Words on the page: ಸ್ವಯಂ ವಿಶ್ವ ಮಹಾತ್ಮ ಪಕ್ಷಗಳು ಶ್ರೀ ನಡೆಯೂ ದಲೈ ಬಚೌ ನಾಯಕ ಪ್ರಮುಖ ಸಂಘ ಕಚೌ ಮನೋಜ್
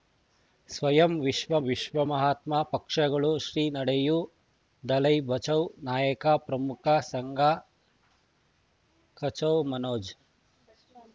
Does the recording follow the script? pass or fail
fail